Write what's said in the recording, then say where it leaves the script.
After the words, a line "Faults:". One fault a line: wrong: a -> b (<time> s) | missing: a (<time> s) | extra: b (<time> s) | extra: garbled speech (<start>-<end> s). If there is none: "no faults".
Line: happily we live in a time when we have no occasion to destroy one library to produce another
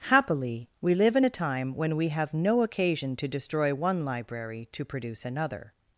happily we live in a time when we have no occasion to destroy one library to produce another
Faults:
no faults